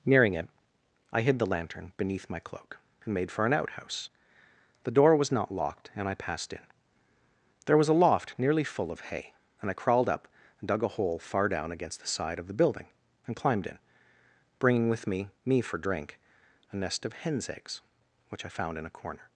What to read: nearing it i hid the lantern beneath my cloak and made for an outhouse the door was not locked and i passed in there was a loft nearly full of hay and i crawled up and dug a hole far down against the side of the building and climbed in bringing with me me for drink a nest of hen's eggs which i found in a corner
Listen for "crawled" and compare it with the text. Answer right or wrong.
right